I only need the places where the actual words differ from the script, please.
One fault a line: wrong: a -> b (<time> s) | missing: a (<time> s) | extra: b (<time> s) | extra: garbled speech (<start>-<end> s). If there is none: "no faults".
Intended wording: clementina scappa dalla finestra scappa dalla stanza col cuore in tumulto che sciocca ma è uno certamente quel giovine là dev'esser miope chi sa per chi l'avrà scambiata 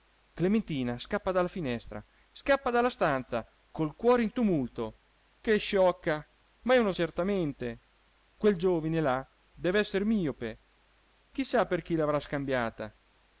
no faults